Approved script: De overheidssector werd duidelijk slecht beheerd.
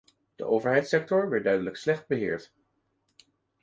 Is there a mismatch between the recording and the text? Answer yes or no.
no